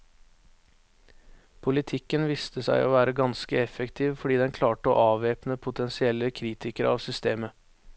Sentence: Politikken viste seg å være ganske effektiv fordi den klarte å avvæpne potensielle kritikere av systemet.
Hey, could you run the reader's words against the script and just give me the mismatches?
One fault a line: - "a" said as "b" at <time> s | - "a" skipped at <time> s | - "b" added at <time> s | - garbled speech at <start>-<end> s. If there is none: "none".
none